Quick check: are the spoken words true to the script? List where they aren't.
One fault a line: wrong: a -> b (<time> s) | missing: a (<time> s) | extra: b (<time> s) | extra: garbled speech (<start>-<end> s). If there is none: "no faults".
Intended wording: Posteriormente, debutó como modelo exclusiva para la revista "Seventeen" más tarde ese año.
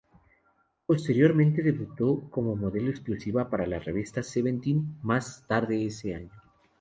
no faults